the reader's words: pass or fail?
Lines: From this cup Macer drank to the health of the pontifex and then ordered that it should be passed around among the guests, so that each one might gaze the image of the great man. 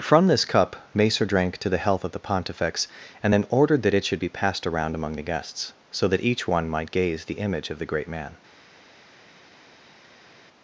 pass